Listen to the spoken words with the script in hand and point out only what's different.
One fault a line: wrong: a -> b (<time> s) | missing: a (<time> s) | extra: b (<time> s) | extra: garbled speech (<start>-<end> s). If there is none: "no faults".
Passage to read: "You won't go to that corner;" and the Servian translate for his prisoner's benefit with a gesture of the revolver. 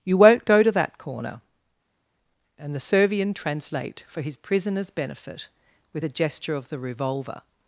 no faults